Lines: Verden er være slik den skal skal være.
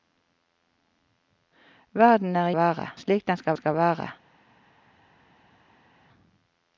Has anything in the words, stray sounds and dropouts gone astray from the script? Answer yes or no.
no